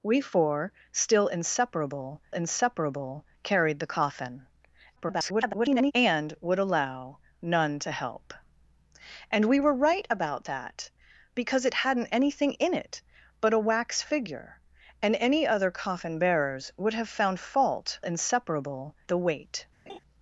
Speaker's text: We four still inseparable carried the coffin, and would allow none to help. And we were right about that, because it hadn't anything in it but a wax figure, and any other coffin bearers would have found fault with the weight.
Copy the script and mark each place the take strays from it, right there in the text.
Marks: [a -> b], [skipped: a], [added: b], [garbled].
We four still inseparable [added: inseparable] carried the coffin, [garbled] and would allow none to help. And we were right about that, because it hadn't anything in it but a wax figure, and any other coffin bearers would have found fault [with -> inseparable] the weight.